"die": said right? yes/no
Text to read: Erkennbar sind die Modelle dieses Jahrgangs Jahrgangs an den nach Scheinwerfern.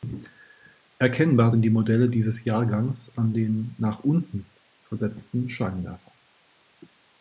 yes